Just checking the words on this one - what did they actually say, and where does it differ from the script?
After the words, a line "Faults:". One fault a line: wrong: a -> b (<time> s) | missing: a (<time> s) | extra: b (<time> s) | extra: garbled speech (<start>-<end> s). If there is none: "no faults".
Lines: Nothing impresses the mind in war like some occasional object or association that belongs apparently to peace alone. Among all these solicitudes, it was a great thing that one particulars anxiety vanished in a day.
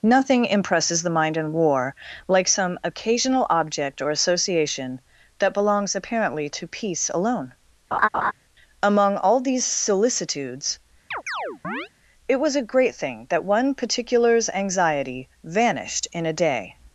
Nothing impresses the mind in war like some occasional object or association that belongs apparently to peace alone. Among all these solicitudes, it was a great thing that one particulars anxiety vanished in a day.
Faults:
no faults